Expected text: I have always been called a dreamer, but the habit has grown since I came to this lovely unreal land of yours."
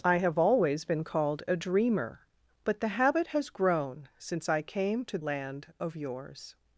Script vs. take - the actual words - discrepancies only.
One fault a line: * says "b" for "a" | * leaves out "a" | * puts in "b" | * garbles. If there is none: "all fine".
* leaves out "this lovely unreal"